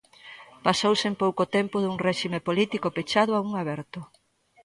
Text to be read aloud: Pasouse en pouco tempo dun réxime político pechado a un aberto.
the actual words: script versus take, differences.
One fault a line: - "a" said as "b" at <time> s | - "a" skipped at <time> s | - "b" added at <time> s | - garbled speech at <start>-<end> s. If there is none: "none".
none